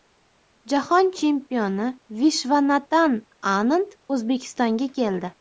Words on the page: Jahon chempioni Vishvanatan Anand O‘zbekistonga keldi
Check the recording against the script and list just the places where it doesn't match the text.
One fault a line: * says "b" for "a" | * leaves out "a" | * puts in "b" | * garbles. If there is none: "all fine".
all fine